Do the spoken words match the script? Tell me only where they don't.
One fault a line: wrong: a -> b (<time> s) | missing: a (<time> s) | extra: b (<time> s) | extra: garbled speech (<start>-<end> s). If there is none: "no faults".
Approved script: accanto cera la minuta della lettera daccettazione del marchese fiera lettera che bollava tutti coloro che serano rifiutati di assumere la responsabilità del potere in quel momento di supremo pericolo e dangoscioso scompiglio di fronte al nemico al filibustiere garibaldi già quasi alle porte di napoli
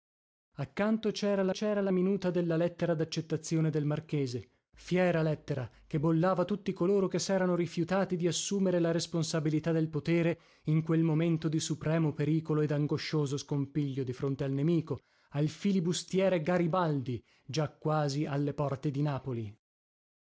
extra: cera la (1.5 s)